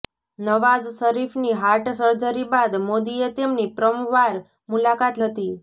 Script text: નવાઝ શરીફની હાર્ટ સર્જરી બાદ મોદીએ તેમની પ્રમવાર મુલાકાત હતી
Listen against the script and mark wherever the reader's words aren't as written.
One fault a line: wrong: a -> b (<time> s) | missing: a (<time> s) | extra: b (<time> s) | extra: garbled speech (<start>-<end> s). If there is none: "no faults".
no faults